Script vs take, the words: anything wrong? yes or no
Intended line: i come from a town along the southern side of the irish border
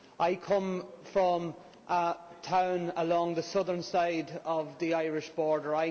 no